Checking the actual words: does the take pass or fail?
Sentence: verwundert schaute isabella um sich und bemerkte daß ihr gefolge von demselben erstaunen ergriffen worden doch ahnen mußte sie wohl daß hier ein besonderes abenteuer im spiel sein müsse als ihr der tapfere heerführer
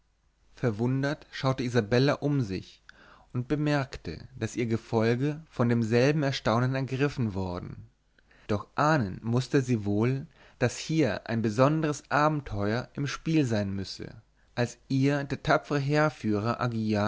pass